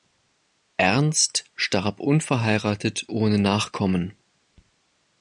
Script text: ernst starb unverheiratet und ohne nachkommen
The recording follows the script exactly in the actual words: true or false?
false